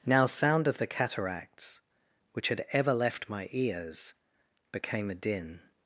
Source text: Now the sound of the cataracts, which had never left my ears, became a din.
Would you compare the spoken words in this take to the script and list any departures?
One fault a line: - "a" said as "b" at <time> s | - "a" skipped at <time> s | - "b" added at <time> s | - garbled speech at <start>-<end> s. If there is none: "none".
- "the" skipped at 0.3 s
- "never" said as "ever" at 2.7 s